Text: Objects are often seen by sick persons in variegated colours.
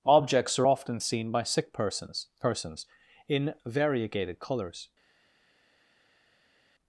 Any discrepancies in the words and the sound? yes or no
yes